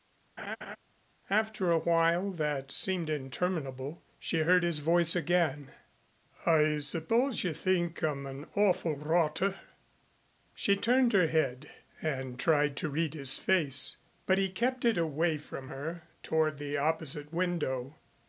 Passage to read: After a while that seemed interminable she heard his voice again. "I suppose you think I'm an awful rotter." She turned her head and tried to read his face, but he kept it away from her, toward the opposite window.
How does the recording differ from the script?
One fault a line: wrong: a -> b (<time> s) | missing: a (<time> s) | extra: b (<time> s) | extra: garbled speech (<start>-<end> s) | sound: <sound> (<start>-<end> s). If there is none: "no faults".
sound: laugh (0.4-0.8 s)